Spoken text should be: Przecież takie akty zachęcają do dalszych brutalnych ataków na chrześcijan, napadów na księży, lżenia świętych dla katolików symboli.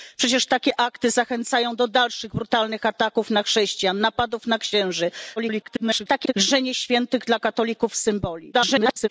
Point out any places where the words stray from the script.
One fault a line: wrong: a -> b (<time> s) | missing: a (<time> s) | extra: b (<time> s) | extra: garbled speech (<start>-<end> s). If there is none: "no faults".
extra: garbled speech (5.4-6.3 s)
extra: garbled speech (8.5-9.1 s)